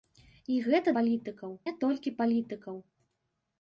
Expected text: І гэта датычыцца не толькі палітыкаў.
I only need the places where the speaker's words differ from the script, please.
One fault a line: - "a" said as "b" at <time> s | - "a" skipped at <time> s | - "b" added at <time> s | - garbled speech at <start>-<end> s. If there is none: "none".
- "датычыцца" said as "палітыкаў" at 1.0 s